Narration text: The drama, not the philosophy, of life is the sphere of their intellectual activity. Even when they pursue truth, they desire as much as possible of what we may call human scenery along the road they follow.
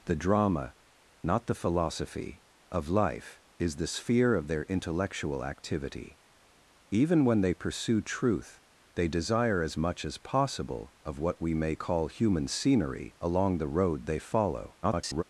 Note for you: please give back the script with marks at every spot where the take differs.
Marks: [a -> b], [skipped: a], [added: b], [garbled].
The drama, not the philosophy, of life is the sphere of their intellectual activity. Even when they pursue truth, they desire as much as possible of what we may call human scenery along the road they follow. [garbled]